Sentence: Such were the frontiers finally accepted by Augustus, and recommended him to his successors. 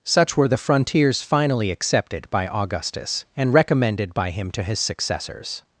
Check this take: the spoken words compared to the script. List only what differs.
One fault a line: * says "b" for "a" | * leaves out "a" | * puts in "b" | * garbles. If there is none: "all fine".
* puts in "by"